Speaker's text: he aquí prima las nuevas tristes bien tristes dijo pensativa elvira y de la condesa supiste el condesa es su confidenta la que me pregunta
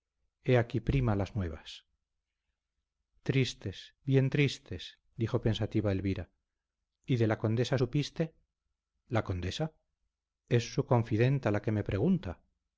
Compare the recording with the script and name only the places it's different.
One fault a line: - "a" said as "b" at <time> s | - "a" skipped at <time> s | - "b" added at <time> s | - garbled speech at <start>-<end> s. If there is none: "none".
- "el" said as "la" at 9.1 s